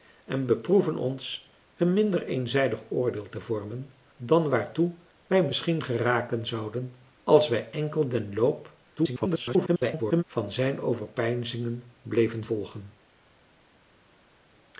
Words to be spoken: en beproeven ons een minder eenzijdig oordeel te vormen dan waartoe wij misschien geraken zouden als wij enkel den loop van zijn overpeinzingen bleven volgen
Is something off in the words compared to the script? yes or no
yes